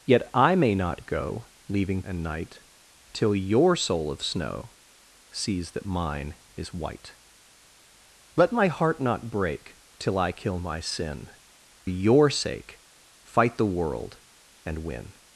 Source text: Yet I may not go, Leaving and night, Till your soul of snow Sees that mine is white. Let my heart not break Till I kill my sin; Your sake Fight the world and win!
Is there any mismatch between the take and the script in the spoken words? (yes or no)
no